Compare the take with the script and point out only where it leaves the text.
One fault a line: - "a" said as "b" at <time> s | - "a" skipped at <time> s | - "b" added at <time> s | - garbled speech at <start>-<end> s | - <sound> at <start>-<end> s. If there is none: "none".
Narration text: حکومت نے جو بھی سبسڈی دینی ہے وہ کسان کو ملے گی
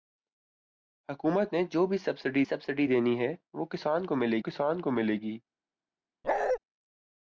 - "سبسڈی" added at 2.4 s
- "کسان کو ملے" added at 4.4 s
- bark at 6.2-6.6 s